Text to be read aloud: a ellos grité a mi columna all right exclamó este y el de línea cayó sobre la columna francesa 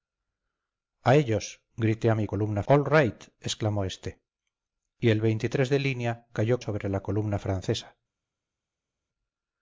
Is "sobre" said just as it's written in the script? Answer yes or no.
yes